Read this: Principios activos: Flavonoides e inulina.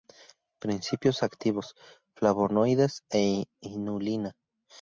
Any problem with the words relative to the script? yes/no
no